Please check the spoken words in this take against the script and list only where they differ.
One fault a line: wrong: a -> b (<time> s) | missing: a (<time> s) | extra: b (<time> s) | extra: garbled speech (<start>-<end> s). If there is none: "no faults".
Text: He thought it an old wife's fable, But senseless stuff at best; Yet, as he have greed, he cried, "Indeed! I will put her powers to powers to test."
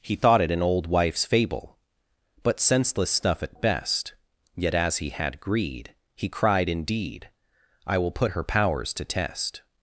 wrong: have -> had (5.1 s)
missing: powers to (9.0 s)